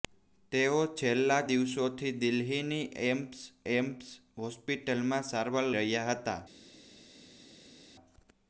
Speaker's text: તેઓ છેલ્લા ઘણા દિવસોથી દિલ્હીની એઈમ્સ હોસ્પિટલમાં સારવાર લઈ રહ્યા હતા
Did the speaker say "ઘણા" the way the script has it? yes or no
no